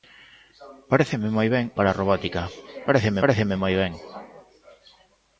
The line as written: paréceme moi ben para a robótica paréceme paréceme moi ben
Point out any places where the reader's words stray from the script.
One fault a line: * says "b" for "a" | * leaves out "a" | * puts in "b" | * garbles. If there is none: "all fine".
all fine